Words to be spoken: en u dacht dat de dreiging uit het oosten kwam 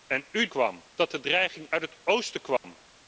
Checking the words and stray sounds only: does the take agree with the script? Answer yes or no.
no